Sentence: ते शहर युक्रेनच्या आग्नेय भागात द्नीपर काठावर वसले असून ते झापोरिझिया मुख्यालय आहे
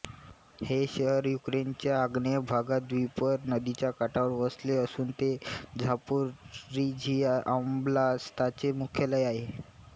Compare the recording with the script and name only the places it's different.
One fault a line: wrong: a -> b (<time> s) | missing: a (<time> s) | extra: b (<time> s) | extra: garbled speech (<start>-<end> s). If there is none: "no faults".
wrong: ते -> हे (0.6 s)
extra: नदीच्या (3.5 s)
extra: ओब्लास्ताचे (7.6 s)